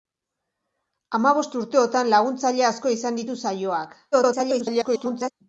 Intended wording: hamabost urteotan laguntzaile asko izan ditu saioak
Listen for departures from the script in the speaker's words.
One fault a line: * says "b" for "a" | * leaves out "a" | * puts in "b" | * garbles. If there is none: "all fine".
* garbles